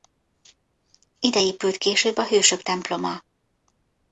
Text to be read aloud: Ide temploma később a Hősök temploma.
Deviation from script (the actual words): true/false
true